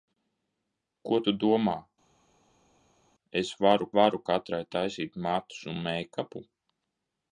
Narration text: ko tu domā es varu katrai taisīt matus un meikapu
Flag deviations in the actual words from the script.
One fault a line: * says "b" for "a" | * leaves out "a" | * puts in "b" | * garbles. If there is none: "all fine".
* puts in "varu"